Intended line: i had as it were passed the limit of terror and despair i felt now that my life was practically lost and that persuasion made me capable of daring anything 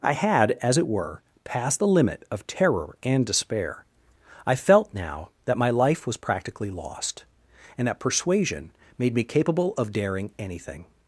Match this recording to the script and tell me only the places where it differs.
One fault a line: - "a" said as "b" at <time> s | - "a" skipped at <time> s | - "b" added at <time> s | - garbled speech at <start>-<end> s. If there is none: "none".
none